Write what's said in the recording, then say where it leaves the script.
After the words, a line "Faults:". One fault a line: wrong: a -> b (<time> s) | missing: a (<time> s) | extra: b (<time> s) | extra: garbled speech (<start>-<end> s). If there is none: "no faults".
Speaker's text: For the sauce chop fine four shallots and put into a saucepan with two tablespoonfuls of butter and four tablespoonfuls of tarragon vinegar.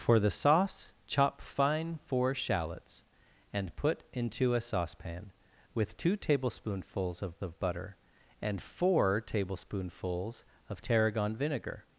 For the sauce chop fine four shallots and put into a saucepan with two tablespoonfuls of of butter and four tablespoonfuls of tarragon vinegar.
Faults:
extra: of (7.4 s)